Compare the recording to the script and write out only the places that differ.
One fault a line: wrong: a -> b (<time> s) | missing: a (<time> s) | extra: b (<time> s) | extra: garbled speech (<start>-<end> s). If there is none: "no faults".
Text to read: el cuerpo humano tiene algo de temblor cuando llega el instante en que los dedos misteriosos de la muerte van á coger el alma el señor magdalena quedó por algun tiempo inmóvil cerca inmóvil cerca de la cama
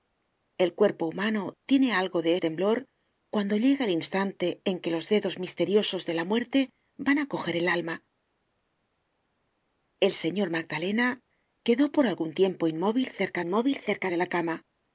no faults